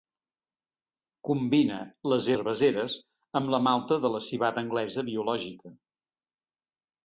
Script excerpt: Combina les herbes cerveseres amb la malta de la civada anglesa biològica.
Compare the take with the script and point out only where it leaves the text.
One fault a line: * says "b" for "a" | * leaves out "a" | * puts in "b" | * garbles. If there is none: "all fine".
* leaves out "herbes"